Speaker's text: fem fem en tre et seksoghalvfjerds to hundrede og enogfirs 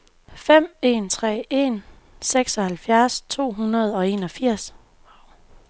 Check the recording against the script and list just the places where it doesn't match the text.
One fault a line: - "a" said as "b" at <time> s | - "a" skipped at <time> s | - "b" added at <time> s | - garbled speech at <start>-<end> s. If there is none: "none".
- "fem" skipped at 0.8 s
- "et" said as "en" at 1.5 s